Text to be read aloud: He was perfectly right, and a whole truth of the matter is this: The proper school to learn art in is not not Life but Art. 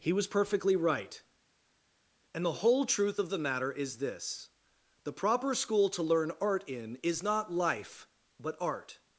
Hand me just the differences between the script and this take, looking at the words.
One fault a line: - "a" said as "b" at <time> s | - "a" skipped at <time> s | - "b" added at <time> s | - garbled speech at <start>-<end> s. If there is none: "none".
- "a" said as "the" at 2.4 s
- "not" skipped at 7.5 s